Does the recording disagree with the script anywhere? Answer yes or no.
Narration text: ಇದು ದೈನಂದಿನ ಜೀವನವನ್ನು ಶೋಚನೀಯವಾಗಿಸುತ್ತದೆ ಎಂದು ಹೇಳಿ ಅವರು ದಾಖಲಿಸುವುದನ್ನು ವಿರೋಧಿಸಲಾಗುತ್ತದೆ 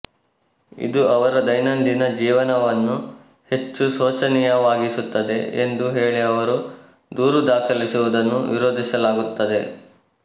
yes